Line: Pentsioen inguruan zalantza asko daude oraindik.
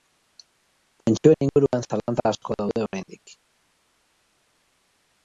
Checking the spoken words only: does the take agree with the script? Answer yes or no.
yes